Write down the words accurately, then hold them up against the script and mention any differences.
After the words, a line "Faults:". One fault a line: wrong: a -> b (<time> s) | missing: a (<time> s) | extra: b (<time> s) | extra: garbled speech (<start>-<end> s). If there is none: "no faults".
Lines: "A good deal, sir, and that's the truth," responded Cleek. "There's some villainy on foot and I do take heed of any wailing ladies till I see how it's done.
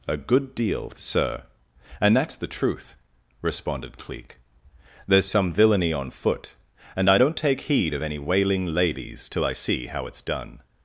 "A good deal, sir, and that's the truth," responded Cleek. "There's some villainy on foot and I don't take heed of any wailing ladies till I see how it's done.
Faults:
wrong: do -> don't (7.1 s)